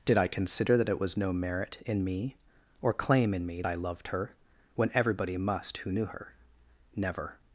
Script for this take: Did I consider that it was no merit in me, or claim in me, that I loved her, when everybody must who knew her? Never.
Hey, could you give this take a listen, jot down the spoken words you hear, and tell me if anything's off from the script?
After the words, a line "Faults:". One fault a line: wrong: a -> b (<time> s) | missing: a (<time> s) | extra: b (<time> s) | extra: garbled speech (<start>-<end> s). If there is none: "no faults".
Did I consider that it was no merit in me, or claim in me, I loved her, when everybody must who knew her? Never.
Faults:
missing: that (3.6 s)